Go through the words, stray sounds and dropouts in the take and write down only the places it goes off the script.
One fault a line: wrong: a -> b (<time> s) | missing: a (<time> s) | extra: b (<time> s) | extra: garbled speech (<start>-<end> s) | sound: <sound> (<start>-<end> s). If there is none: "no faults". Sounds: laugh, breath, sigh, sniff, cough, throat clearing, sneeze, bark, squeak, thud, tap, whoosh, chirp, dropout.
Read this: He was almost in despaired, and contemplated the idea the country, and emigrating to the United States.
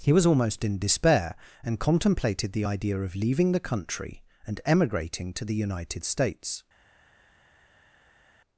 wrong: despaired -> despair (0.8 s)
extra: of leaving (3.0 s)